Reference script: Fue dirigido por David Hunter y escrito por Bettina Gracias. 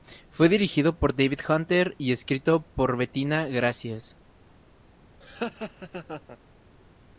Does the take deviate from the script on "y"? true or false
false